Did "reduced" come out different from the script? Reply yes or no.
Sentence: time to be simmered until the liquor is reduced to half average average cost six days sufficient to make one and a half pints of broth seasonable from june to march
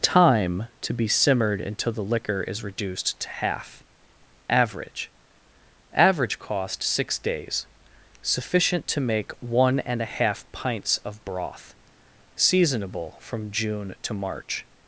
no